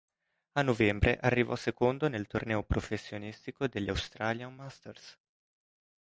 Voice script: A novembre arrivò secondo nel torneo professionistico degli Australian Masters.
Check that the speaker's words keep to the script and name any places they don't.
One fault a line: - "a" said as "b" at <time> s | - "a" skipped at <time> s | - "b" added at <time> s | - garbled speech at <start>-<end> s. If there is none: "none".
none